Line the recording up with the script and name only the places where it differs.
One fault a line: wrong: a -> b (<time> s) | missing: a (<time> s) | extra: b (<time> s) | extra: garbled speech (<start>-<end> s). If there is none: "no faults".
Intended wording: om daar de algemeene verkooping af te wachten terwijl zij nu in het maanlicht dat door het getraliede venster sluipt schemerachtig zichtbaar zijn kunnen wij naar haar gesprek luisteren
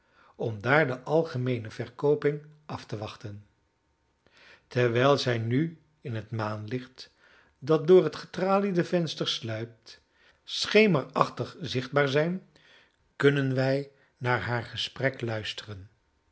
no faults